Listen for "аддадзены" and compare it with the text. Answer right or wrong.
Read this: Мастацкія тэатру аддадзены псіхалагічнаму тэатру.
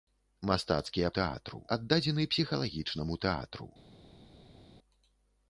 right